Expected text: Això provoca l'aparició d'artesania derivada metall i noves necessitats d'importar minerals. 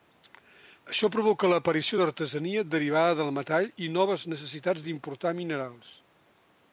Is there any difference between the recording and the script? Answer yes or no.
yes